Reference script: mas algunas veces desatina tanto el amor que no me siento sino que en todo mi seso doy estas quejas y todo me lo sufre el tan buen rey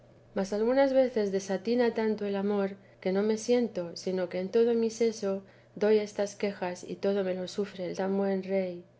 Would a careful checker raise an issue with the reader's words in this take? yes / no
no